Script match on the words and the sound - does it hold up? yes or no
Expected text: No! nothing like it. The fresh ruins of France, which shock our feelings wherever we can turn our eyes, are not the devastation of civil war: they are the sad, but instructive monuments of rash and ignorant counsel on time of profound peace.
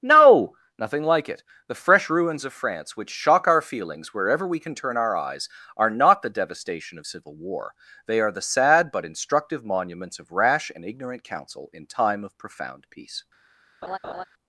no